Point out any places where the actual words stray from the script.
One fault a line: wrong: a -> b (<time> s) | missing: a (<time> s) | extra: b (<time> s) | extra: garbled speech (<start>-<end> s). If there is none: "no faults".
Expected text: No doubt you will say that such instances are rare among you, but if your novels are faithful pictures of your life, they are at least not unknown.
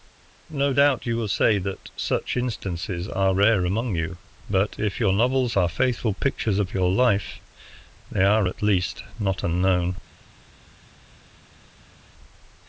no faults